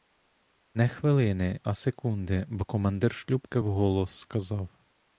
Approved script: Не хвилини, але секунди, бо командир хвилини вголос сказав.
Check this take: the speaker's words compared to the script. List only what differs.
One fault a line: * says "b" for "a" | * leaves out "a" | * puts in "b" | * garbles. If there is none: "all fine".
* says "а" for "але"
* says "шлюпки" for "хвилини"